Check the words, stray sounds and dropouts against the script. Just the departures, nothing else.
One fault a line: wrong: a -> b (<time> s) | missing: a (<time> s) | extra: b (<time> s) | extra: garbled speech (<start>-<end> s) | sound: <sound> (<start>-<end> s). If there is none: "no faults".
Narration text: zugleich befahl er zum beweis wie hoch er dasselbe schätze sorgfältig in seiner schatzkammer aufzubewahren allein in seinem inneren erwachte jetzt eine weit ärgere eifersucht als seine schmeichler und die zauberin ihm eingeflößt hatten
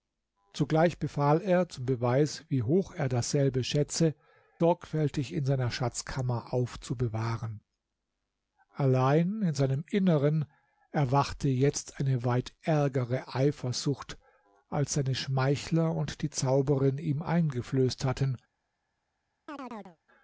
sound: chirp (19.5-20.0 s)